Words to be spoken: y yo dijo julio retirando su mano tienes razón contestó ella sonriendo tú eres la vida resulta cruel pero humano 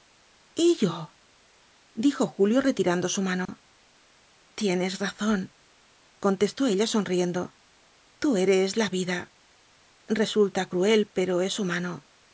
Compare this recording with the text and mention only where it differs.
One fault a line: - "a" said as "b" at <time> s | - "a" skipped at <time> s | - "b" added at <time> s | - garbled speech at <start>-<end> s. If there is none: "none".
- "es" added at 11.4 s